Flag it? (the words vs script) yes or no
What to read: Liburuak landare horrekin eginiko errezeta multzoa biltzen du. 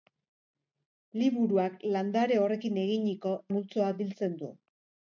yes